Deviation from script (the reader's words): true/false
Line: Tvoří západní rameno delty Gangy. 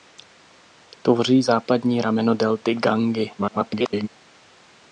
true